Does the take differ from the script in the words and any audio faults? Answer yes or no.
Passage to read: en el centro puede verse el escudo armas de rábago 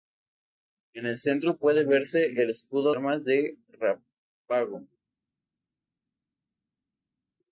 no